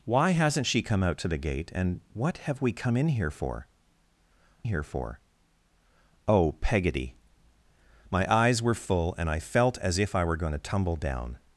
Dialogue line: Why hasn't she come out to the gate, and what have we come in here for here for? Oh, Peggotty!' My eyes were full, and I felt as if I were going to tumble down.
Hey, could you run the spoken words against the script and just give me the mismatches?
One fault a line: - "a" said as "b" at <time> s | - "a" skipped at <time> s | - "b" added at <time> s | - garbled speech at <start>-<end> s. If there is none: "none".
none